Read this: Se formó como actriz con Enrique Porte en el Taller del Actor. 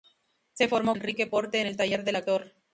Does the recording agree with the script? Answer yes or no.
no